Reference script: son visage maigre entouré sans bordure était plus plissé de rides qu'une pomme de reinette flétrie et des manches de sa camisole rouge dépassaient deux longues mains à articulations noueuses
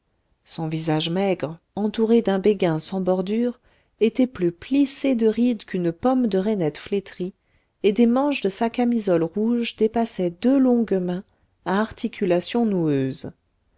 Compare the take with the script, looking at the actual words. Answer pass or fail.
fail